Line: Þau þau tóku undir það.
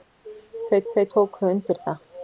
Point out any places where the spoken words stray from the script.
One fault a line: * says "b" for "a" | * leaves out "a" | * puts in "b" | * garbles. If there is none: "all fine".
all fine